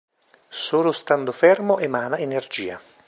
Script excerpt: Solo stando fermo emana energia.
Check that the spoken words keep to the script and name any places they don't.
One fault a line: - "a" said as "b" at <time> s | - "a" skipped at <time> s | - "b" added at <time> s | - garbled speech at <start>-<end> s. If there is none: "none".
none